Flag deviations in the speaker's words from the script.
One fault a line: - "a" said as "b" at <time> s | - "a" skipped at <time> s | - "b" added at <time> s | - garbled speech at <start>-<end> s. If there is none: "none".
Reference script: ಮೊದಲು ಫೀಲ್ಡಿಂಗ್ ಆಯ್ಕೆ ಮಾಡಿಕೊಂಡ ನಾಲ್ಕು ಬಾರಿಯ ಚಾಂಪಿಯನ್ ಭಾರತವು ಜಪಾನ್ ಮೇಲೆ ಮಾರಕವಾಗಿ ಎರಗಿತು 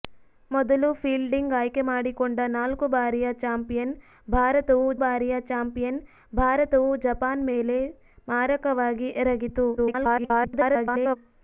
- "ಬಾರಿಯ ಚಾಂಪಿಯನ್ ಭಾರತವು" added at 5.0 s
- garbled speech at 9.8-11.2 s